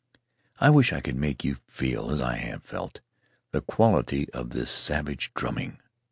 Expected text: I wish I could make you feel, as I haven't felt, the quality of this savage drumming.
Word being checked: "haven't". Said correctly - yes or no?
no